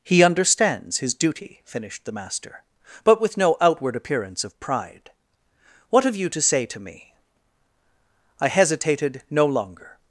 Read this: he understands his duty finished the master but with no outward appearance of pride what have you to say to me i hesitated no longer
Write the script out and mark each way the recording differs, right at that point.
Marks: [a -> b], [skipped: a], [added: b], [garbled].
he understands his duty finished the master but with no outward appearance of pride what have you to say to me i hesitated no longer